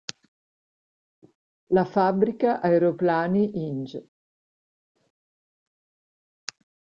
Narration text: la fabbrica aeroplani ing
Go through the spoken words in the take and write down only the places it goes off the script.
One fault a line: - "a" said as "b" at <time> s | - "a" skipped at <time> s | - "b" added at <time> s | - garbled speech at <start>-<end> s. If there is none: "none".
none